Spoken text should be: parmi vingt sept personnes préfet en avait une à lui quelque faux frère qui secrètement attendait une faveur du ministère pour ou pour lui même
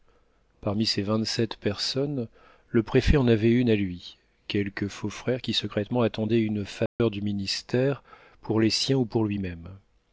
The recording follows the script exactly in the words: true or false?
false